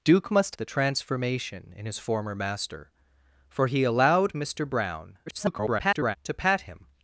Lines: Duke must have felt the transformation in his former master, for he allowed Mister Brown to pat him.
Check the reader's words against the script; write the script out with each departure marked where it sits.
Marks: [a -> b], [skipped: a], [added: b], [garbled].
Duke must [skipped: have felt] the transformation in his former master, for he allowed Mister Brown [garbled] to pat him.